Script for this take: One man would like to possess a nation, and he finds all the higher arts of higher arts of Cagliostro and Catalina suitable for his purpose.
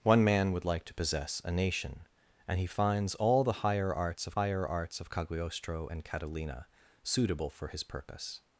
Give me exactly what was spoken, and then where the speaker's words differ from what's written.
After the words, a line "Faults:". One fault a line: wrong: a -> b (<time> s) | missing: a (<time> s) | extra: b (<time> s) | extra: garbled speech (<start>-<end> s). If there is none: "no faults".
One man would like to possess a nation, and he finds all the higher arts of higher arts of Cagliostro and Catalina suitable for his purpose.
Faults:
no faults